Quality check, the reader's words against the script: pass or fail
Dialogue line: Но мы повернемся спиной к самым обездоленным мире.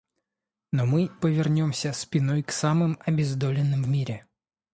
pass